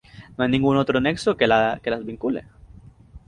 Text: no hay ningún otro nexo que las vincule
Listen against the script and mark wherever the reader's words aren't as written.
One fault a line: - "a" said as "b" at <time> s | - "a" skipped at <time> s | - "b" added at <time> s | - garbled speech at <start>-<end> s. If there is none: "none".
none